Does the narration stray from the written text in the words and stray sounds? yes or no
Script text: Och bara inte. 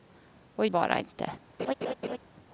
yes